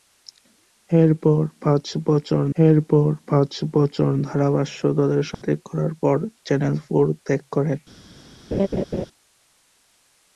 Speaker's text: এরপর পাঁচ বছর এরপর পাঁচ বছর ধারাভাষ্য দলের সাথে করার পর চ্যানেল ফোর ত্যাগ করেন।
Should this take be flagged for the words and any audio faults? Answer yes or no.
yes